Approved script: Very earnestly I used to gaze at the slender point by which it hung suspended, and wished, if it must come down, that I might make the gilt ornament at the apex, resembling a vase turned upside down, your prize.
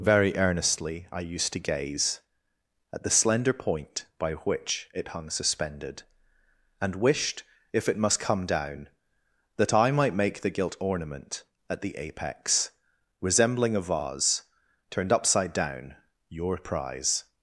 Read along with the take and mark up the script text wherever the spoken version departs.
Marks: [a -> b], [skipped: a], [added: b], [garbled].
Very earnestly I used to gaze at the slender point by which it hung suspended, and wished, if it must come down, that I might make the gilt ornament at the apex, resembling a vase turned upside down, your prize.